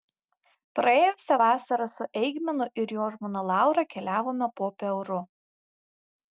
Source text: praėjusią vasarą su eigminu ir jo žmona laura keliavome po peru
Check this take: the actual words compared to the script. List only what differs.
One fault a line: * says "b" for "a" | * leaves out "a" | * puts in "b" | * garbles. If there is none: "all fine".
all fine